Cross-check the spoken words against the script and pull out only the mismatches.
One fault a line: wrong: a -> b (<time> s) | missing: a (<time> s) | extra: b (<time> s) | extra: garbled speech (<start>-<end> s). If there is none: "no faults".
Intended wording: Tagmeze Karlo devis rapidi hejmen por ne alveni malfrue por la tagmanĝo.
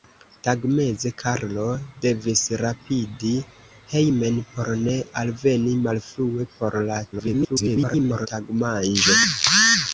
extra: garbled speech (7.1-8.3 s)